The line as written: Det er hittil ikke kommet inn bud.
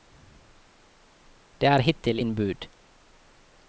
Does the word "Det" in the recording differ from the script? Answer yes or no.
no